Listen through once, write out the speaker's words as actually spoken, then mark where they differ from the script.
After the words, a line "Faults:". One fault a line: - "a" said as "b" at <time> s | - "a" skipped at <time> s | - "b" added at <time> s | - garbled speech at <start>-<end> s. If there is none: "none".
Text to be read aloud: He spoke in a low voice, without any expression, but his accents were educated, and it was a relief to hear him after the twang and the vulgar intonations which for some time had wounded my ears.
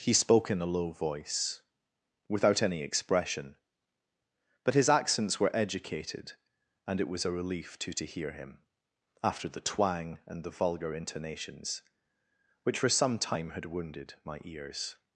He spoke in a low voice, without any expression, but his accents were educated, and it was a relief to to hear him after the twang and the vulgar intonations which for some time had wounded my ears.
Faults:
- "to" added at 7.9 s